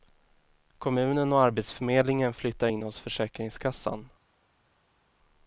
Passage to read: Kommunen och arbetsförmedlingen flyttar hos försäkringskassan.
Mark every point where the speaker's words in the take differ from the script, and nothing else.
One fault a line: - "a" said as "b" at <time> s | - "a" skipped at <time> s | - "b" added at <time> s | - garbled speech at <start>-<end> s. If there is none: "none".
- "in" added at 2.6 s